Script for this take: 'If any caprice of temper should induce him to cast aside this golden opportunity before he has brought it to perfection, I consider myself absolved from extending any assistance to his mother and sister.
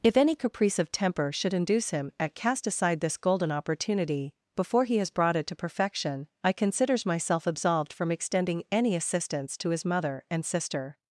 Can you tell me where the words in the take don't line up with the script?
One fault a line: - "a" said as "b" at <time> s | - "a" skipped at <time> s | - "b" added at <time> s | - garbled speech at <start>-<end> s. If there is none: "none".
- "to" said as "at" at 2.2 s
- "consider" said as "considers" at 6.5 s